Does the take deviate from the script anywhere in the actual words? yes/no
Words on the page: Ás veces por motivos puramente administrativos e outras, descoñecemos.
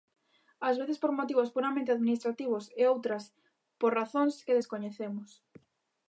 yes